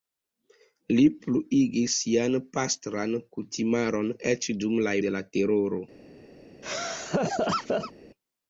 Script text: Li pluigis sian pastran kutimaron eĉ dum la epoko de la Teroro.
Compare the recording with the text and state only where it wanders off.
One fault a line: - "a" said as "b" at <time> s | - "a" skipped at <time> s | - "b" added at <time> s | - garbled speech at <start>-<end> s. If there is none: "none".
- "epoko" skipped at 4.9 s